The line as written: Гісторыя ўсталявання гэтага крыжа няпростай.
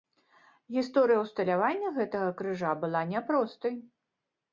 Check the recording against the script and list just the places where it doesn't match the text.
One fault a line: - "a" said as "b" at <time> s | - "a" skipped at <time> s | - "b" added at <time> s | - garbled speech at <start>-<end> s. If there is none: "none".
- "была" added at 2.9 s